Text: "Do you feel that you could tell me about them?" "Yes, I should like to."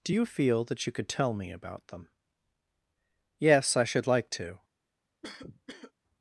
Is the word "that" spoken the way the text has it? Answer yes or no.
yes